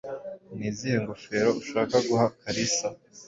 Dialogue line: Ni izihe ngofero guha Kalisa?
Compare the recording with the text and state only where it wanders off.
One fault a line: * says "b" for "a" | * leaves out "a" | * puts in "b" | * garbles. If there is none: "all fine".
* puts in "ushaka"